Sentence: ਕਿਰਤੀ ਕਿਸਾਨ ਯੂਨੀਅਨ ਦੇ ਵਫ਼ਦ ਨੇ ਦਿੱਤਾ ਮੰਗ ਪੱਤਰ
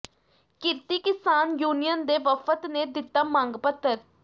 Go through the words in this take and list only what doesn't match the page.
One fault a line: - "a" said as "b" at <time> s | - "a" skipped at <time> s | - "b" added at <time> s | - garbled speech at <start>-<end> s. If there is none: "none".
none